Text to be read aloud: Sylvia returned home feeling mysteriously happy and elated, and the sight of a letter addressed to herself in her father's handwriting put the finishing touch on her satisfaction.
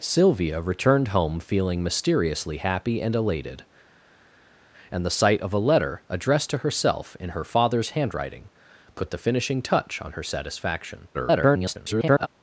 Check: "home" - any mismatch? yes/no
no